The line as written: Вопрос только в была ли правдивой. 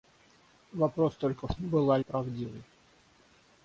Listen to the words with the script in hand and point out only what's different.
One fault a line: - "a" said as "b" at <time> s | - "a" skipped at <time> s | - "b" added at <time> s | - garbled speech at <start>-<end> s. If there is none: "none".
none